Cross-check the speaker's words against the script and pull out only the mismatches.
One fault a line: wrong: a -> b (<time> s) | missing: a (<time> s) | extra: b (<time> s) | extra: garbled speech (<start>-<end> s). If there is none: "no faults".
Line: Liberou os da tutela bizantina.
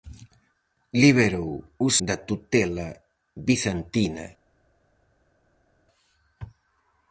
no faults